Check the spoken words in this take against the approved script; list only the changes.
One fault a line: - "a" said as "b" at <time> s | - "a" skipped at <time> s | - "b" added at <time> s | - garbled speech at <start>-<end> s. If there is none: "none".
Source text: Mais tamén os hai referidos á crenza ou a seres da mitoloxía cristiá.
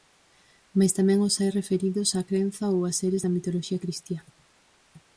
none